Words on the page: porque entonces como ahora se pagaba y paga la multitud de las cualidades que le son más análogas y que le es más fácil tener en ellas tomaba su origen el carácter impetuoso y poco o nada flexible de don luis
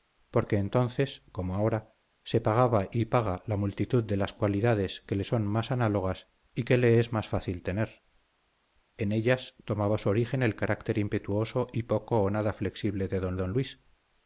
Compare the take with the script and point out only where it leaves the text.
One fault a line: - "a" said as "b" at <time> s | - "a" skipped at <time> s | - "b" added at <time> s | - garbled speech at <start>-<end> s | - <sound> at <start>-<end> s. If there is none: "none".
- "don" added at 13.4 s